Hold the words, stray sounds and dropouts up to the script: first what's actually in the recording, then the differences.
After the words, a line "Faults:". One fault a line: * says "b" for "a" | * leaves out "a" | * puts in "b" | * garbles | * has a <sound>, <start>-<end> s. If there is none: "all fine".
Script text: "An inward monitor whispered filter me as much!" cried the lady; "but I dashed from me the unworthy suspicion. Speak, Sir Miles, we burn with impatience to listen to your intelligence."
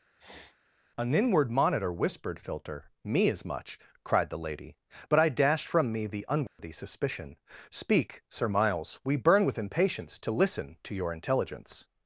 "An inward monitor whispered filter me as much!" cried the lady; "but I dashed from me the unworthy suspicion. Speak, Sir Miles, we burn with impatience to listen to your intelligence."
Faults:
* has a sniff, 0.2-0.6 s
* has a dropout, 6.5-6.6 s